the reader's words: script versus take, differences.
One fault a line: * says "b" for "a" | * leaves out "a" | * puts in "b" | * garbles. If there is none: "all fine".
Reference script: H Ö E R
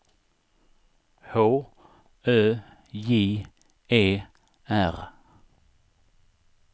* puts in "J"